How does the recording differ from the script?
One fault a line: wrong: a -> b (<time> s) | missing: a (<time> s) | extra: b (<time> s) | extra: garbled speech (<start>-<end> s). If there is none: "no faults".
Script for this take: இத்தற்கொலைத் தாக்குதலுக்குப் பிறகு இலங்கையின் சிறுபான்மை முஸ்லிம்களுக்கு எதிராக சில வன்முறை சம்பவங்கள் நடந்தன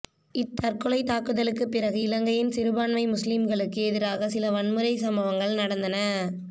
no faults